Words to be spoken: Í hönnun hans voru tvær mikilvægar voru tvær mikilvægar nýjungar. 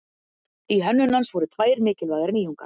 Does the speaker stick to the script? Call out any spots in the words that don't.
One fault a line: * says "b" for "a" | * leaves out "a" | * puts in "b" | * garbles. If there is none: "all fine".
* leaves out "voru tvær mikilvægar"